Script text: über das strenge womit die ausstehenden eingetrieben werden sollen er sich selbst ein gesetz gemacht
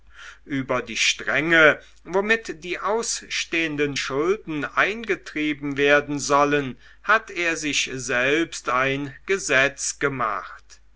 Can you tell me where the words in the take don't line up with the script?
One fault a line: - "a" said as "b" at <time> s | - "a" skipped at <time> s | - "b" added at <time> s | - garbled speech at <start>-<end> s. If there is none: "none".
- "das" said as "die" at 0.8 s
- "schulden" added at 4.0 s
- "hat" added at 7.0 s